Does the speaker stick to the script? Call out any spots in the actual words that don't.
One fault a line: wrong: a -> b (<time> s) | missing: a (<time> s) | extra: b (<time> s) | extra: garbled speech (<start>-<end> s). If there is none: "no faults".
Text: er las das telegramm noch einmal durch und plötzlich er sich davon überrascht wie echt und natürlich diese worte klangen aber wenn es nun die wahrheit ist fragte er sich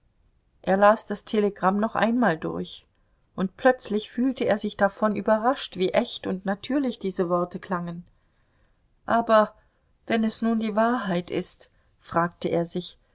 extra: fühlte (4.1 s)